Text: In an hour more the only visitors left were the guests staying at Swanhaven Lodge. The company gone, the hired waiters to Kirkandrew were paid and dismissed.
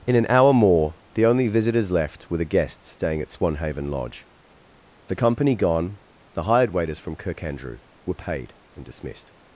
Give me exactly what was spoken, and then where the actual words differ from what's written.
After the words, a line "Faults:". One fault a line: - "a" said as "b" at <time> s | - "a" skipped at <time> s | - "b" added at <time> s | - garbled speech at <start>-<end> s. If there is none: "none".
In an hour more the only visitors left were the guests staying at Swanhaven Lodge. The company gone, the hired waiters from Kirkandrew were paid and dismissed.
Faults:
- "to" said as "from" at 7.0 s